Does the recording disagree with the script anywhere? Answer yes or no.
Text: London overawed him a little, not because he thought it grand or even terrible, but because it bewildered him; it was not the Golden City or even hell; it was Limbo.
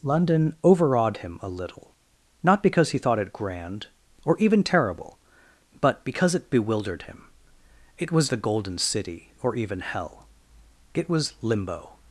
yes